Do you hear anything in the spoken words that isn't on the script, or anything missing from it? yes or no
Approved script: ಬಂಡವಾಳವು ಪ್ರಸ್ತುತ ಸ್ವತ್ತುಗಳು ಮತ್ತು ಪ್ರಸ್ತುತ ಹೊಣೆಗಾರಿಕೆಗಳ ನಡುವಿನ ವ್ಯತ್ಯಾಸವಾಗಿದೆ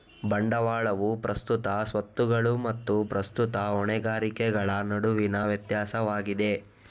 no